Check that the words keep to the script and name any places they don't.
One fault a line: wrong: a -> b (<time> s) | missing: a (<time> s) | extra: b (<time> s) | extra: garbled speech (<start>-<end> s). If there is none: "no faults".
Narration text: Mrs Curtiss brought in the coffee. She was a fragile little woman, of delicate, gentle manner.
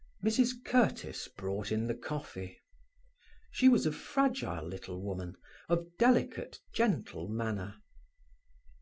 no faults